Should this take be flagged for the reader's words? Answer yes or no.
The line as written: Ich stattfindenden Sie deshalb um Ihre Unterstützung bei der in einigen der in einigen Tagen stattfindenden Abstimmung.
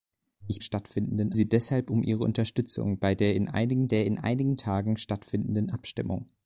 no